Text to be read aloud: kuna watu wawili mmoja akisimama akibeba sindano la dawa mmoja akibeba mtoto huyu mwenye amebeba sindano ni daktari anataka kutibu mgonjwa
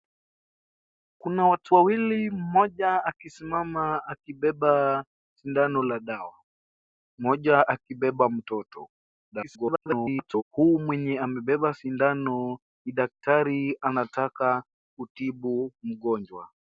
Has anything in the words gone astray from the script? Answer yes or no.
yes